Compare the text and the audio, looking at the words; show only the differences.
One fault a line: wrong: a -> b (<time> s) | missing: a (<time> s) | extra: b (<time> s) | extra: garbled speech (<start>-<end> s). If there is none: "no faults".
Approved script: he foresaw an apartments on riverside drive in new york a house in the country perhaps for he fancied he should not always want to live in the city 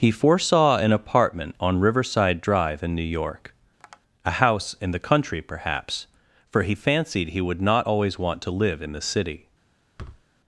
wrong: apartments -> apartment (0.9 s)
wrong: should -> would (7.4 s)